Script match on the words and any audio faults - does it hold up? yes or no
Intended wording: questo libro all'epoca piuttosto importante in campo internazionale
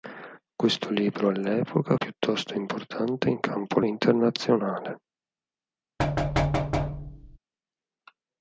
no